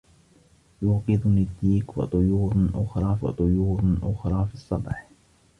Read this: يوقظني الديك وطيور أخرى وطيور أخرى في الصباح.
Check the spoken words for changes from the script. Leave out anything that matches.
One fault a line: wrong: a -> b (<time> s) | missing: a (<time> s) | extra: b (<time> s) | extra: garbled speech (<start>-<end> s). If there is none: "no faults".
no faults